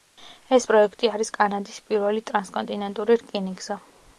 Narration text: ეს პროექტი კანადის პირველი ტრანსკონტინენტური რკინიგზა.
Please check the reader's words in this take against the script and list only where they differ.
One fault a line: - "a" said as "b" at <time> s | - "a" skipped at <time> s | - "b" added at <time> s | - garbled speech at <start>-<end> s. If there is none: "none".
- "არის" added at 1.2 s